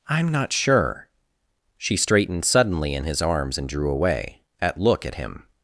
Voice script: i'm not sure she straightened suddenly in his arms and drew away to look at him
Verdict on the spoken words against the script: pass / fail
fail